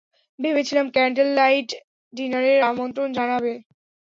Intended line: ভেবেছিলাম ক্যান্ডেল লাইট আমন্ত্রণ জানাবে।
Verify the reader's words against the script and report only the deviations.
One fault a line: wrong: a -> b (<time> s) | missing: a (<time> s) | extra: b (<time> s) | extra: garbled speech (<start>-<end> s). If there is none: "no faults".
extra: ডিনারের (2.1 s)